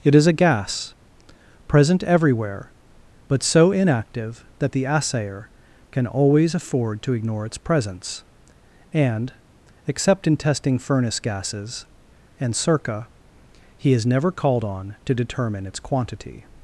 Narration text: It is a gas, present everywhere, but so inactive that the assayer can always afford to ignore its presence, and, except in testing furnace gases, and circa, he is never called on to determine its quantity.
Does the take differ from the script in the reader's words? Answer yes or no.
no